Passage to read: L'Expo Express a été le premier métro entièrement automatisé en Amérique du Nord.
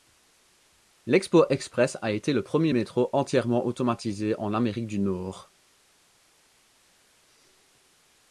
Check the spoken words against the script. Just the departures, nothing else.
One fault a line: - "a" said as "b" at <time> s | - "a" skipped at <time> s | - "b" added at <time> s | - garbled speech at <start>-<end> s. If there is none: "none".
none